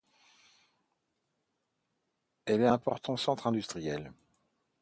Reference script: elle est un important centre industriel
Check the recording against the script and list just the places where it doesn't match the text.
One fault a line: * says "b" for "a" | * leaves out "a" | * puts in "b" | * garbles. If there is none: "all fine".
* leaves out "un"